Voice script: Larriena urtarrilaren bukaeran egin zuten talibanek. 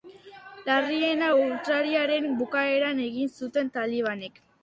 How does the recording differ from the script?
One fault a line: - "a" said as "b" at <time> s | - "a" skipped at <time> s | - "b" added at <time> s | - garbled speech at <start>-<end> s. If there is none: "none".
none